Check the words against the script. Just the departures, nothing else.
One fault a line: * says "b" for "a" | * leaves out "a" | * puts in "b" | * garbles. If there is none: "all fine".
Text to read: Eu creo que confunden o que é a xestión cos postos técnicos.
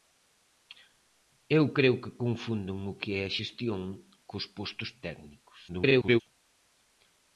* garbles